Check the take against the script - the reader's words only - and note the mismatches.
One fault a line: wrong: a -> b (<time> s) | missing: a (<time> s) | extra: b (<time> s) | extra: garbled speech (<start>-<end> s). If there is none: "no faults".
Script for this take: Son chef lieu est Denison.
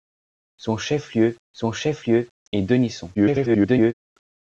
extra: son chef lieu (1.6 s)
extra: garbled speech (3.1-3.9 s)